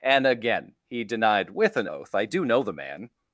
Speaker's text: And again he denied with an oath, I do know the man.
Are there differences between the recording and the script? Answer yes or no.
no